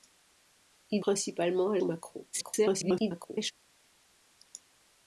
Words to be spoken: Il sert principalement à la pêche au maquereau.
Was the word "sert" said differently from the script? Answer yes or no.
yes